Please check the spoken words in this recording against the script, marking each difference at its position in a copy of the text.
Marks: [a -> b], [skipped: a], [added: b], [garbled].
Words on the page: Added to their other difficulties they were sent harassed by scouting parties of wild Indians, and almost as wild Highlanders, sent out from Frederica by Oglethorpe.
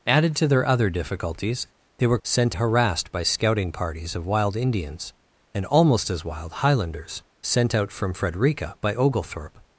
Added to their other difficulties they were sent harassed by scouting parties of wild Indians, and almost as wild Highlanders, sent out from Frederica by Oglethorpe.